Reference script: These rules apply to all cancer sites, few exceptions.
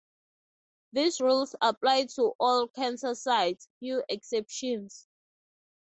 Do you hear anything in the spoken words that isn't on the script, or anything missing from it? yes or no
no